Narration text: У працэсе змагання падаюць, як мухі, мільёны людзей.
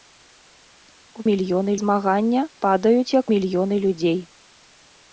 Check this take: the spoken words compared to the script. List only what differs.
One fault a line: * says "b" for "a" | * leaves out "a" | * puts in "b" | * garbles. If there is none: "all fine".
* says "мільёны" for "працэсе"
* leaves out "мухі"